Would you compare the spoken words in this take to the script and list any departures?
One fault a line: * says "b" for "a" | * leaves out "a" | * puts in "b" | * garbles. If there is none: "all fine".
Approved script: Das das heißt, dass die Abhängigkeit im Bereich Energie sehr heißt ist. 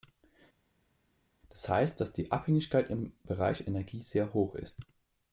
* leaves out "das"
* says "hoch" for "heißt"